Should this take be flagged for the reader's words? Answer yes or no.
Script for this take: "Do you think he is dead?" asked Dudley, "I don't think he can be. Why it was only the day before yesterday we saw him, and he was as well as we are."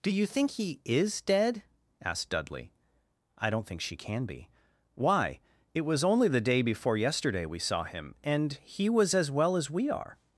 yes